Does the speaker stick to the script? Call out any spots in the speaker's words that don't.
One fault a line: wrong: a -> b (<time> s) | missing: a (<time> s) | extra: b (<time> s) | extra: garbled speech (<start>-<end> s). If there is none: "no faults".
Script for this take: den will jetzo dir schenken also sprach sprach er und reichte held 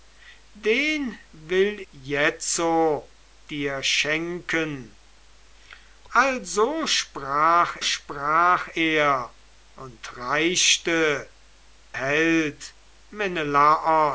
no faults